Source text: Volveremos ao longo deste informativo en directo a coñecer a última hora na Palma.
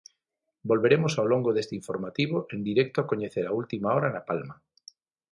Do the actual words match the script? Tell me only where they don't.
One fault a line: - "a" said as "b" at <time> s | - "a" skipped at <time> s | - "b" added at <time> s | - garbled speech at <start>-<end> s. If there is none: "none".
none